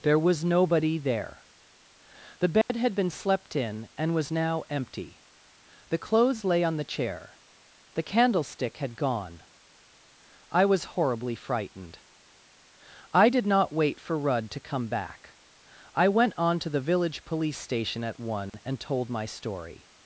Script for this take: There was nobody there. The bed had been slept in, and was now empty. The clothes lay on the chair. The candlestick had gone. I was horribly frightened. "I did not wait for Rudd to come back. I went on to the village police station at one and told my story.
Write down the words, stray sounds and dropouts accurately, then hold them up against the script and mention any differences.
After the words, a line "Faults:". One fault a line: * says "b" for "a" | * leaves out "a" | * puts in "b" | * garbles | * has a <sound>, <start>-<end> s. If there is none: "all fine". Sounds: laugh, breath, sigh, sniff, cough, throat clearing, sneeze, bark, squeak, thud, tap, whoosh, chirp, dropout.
There was nobody there. The bed had been slept in, and was now empty. The clothes lay on the chair. The candlestick had gone. I was horribly frightened. "I did not wait for Rudd to come back. I went on to the village police station at one and told my story.
Faults:
* has a dropout, 2.6-2.7 s
* has a dropout, 18.5-18.5 s